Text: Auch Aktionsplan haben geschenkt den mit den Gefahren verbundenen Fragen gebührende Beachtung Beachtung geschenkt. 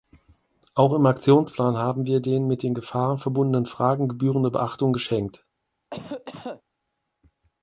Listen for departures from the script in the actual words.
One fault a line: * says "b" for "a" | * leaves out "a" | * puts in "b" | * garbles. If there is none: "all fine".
* puts in "im"
* says "wir" for "geschenkt"
* leaves out "Beachtung"